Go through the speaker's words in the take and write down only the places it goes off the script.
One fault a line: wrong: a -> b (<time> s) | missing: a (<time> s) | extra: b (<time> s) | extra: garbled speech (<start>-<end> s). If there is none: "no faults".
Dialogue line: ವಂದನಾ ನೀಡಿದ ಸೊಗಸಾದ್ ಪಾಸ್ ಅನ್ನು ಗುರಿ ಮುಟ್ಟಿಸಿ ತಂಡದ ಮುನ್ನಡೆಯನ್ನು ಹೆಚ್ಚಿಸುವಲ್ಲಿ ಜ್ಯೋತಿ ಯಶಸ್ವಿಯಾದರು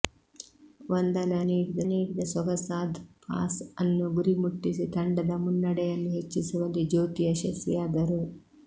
extra: ನೀಡಿದ (1.8 s)